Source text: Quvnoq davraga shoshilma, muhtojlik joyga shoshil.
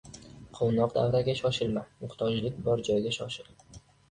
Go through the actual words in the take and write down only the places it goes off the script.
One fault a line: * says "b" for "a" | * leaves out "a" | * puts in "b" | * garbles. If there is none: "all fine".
* puts in "bor"